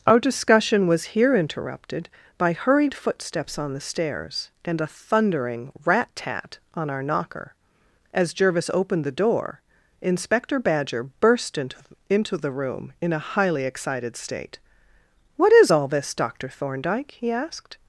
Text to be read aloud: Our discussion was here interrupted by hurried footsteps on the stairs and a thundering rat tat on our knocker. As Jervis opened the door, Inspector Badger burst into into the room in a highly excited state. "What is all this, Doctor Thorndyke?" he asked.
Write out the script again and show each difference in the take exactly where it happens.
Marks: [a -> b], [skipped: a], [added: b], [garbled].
Our discussion was here interrupted by hurried footsteps on the stairs and a thundering rat tat on our knocker. As Jervis opened the door, Inspector Badger burst into into the room in a highly excited state. "What is all this, Doctor Thorndyke?" he asked.